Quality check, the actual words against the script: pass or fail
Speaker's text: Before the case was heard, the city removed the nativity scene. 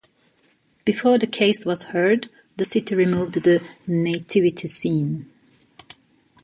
pass